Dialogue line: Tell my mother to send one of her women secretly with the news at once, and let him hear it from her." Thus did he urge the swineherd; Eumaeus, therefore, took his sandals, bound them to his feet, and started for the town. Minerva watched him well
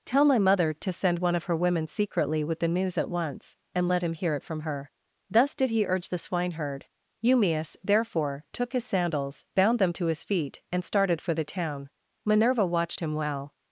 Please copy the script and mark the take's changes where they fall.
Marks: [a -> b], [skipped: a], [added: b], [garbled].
Tell my mother to send one of her women secretly with the news at once, and let him hear it from her." Thus did he urge the swineherd; Eumaeus, therefore, took his sandals, bound them to his feet, and started for the town. Minerva watched him well